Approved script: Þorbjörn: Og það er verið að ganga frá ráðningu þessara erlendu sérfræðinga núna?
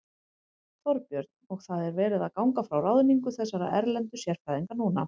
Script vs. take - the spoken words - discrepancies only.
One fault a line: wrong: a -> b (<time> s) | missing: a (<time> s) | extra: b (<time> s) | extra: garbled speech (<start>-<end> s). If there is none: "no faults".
no faults